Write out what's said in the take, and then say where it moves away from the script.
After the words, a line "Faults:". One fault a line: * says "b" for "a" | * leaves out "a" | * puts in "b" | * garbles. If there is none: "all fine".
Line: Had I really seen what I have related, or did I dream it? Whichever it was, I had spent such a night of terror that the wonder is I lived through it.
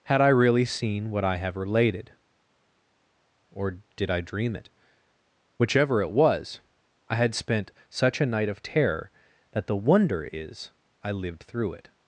Had I really seen what I have related, or did I dream it? Whichever it was, I had spent such a night of terror that the wonder is I lived through it.
Faults:
all fine